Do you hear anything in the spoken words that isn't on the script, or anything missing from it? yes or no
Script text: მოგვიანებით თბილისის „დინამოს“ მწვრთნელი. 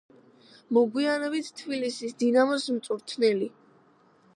no